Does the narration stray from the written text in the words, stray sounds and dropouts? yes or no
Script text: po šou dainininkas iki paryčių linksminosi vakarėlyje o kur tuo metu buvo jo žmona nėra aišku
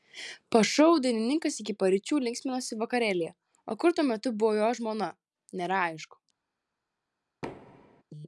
yes